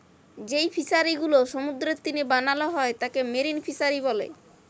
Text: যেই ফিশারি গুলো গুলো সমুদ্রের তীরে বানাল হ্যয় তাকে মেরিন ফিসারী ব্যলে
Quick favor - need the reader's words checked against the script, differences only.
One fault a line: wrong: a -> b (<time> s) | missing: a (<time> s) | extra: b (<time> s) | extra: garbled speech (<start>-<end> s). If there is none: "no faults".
missing: গুলো (1.4 s)